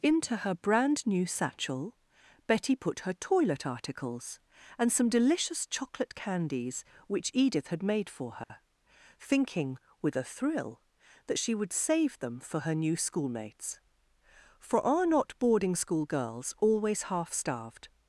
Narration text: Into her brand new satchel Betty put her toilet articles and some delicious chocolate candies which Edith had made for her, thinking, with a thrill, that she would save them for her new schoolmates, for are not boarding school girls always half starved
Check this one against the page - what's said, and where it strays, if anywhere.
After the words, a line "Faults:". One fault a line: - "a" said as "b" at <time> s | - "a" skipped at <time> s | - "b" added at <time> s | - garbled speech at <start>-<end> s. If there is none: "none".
Into her brand new satchel Betty put her toilet articles and some delicious chocolate candies which Edith had made for her, thinking, with a thrill, that she would save them for her new schoolmates, for are not boarding school girls always half starved
Faults:
none